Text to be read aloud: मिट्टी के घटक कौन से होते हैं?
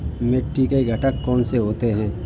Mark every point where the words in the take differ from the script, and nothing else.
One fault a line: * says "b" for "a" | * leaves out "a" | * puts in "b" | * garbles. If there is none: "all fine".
all fine